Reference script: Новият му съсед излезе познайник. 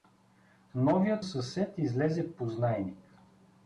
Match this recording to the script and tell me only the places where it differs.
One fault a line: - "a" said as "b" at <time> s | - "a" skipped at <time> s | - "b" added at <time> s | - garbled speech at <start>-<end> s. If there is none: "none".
- "му" skipped at 1.2 s